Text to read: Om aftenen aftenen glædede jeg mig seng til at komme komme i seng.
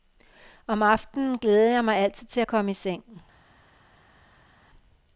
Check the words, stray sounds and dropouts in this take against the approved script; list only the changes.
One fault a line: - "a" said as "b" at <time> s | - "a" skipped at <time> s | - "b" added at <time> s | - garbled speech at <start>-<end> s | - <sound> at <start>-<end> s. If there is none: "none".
- "aftenen" skipped at 1.4 s
- "seng" said as "altid" at 2.0 s
- "komme" skipped at 2.7 s